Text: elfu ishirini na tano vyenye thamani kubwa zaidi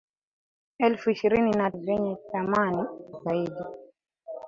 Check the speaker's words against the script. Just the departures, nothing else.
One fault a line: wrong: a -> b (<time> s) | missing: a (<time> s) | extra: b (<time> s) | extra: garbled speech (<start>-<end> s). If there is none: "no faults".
missing: tano (1.7 s)
missing: kubwa (2.8 s)